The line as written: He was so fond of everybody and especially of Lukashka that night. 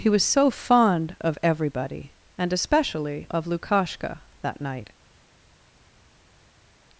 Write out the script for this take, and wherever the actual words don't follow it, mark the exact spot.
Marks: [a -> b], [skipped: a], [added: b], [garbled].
He was so fond of everybody and especially of Lukashka that night.